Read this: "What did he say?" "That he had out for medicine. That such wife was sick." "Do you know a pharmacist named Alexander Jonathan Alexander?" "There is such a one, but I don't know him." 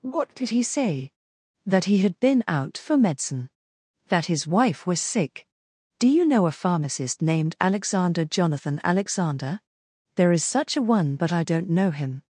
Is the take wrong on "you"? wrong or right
right